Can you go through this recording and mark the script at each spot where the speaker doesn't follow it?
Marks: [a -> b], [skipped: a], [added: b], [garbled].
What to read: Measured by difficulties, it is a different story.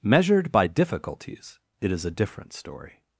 Measured by difficulties, it is a different story.